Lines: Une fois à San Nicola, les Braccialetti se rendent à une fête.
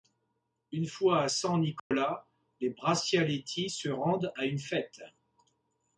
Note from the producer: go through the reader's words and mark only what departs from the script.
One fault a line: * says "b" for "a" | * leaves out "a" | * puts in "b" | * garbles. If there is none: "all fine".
all fine